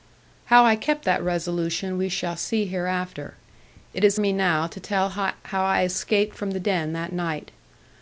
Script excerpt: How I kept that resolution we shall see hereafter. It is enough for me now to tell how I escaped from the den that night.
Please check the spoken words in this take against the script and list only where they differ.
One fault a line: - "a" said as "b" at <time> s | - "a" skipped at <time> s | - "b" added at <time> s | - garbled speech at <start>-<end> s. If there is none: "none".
- "enough for" skipped at 4.2 s